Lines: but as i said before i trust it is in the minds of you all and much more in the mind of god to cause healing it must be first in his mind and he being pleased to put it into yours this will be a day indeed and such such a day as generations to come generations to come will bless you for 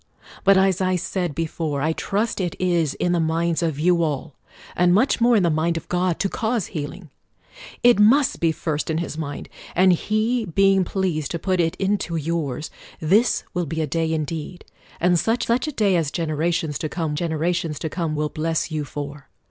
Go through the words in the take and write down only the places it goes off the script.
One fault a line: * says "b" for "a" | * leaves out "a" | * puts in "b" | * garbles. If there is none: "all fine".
all fine